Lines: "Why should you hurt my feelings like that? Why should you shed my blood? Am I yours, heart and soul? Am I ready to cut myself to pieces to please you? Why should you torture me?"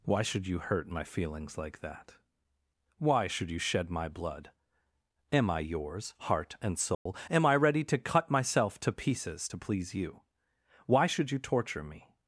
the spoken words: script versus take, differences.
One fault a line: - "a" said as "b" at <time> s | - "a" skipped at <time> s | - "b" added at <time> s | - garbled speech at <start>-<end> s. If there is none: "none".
none